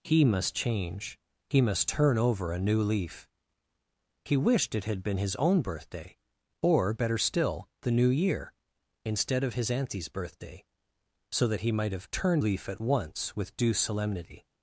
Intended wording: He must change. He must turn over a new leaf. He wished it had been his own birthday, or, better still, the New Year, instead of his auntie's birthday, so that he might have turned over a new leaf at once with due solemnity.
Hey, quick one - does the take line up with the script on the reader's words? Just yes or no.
no